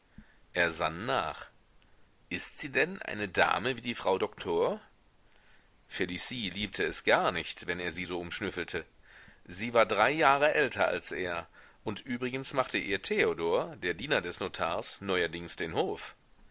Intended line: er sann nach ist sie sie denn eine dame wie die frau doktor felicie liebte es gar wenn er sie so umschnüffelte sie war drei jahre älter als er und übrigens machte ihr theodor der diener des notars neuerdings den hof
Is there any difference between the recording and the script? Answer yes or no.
yes